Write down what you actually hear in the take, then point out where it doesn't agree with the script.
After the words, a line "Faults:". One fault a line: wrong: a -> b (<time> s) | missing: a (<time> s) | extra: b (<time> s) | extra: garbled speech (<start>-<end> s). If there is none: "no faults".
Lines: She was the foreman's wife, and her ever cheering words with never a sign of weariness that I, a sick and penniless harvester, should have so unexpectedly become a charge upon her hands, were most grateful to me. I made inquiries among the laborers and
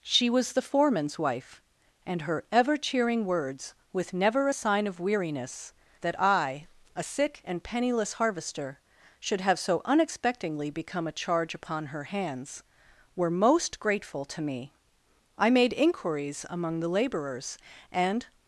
She was the foreman's wife, and her ever cheering words with never a sign of weariness that I, a sick and penniless harvester, should have so unexpectedly become a charge upon her hands, were most grateful to me. I made inquiries among the laborers and
Faults:
no faults